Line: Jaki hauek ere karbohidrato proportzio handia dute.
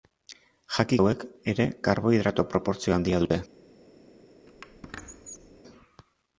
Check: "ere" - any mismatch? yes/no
no